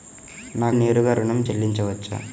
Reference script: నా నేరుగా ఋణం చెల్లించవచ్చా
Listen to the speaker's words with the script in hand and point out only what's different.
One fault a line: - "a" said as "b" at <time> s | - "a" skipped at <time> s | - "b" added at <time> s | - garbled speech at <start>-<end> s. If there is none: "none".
none